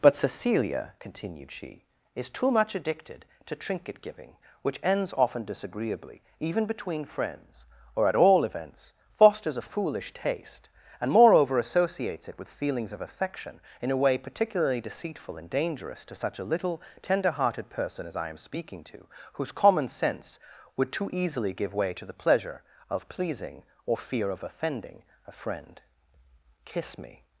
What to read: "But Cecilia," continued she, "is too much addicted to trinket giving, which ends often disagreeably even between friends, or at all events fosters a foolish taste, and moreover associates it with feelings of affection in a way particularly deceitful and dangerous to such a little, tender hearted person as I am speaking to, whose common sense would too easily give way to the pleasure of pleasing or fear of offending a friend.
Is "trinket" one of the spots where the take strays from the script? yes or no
no